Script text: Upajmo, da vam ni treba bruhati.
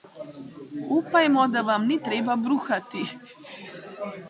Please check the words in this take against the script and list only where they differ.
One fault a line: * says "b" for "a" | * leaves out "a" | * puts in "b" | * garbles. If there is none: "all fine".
all fine